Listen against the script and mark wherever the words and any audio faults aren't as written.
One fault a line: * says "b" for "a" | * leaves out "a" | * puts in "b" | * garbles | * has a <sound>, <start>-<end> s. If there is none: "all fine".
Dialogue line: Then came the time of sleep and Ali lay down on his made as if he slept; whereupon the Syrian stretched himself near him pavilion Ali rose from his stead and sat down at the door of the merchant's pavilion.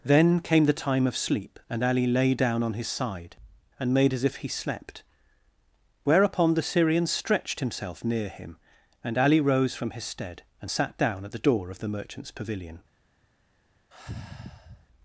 * puts in "side and"
* says "and" for "pavilion"
* has a sigh, 13.9-14.9 s